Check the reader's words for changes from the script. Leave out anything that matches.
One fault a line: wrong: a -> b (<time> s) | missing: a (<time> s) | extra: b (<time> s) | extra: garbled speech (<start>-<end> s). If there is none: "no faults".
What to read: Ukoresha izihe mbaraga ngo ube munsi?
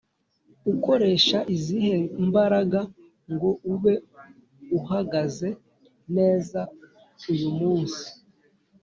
extra: uhagaze neza uyu (4.8 s)